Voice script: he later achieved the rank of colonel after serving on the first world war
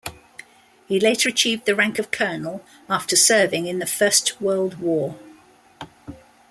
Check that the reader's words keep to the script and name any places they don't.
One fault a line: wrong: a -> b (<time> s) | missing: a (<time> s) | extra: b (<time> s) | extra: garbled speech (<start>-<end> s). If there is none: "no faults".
wrong: on -> in (3.7 s)